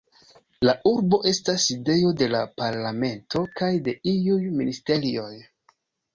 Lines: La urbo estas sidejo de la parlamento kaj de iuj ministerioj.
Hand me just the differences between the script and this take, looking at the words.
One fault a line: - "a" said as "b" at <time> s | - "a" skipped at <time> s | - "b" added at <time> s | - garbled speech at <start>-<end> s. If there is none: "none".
none